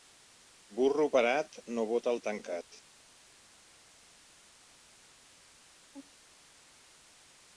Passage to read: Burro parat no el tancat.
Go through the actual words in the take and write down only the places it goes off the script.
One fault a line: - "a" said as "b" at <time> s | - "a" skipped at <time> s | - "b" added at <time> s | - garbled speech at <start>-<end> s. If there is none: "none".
- "bota" added at 1.9 s